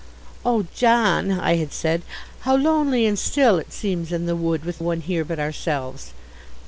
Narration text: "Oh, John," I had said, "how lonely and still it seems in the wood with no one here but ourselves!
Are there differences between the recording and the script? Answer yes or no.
yes